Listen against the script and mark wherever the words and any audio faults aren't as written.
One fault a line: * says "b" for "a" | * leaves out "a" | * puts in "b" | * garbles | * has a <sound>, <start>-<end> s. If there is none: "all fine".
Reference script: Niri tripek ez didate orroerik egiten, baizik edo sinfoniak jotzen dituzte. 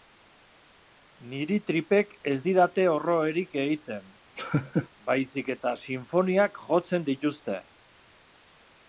* has a laugh, 4.4-4.9 s
* says "eta" for "edo"